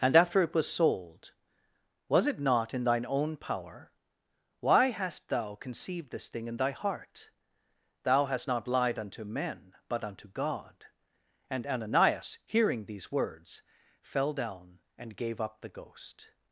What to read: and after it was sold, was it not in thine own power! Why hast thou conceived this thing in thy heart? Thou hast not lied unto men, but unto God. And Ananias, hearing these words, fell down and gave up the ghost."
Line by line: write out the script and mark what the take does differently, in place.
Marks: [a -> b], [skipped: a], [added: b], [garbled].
and after it was sold, was it not in thine own power! Why hast thou conceived this thing in thy heart? Thou hast not lied unto men, but unto God. And Ananias, hearing these words, fell down and gave up the ghost."